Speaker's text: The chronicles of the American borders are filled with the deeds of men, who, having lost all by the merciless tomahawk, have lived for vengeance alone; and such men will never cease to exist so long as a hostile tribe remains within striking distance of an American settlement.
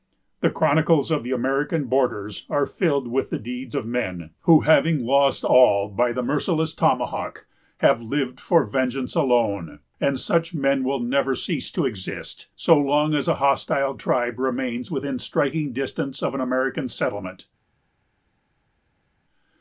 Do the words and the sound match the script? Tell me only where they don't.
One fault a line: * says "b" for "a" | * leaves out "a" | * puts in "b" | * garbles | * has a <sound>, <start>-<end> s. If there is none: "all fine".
all fine